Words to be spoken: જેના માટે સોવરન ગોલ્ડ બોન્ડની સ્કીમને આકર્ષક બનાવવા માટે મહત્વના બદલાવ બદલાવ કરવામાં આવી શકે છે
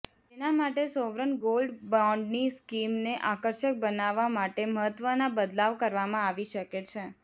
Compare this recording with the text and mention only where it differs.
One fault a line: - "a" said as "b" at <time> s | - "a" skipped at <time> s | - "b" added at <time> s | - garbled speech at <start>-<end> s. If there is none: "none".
- "બદલાવ" skipped at 5.8 s